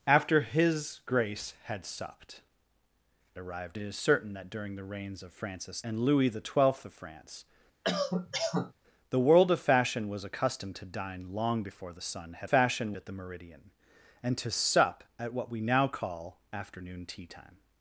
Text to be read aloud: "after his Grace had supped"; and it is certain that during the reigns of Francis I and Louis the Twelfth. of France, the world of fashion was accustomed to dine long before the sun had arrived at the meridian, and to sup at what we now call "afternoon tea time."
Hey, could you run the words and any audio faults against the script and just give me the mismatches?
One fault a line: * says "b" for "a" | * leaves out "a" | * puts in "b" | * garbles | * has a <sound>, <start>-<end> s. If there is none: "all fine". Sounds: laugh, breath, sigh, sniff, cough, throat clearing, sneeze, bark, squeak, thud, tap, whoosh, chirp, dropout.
* says "arrived" for "and"
* leaves out "I"
* has a cough, 7.8-8.7 s
* says "fashion" for "arrived"